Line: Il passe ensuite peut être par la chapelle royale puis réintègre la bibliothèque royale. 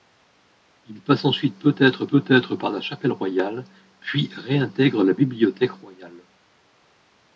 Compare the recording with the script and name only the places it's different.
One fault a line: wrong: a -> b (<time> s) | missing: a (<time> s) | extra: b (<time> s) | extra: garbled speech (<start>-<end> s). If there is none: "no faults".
extra: peut être (2.1 s)